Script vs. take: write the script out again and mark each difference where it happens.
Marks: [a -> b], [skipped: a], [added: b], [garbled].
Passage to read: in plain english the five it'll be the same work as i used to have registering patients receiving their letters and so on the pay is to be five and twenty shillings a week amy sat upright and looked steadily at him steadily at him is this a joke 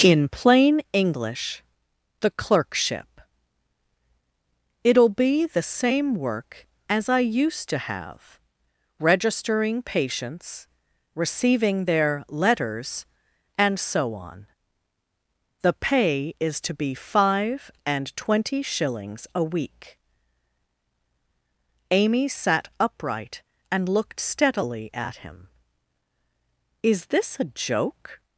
in plain english the [five -> clerkship] it'll be the same work as i used to have registering patients receiving their letters and so on the pay is to be five and twenty shillings a week amy sat upright and looked steadily at him [skipped: steadily at him] is this a joke